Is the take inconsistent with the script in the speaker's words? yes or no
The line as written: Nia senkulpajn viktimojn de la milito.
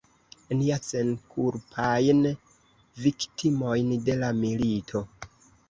no